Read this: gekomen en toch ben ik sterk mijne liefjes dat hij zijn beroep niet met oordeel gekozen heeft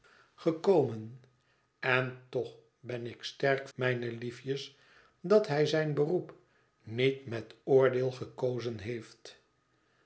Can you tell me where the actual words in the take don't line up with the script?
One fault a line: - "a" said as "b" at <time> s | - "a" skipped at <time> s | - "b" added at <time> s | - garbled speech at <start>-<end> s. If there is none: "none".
none